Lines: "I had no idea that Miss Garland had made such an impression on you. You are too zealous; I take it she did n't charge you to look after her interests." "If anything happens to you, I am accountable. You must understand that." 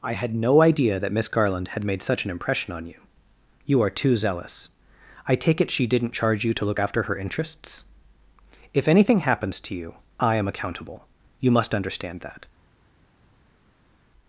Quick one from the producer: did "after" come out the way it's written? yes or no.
yes